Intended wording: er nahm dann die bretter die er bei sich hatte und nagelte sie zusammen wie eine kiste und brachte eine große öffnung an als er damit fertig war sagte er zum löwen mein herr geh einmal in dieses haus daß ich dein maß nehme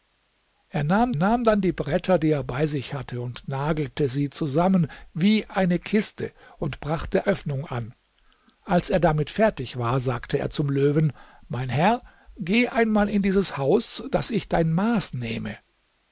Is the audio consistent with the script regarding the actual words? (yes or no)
no